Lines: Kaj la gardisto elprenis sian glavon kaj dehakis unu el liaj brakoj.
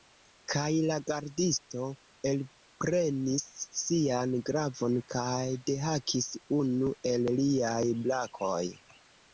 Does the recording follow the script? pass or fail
pass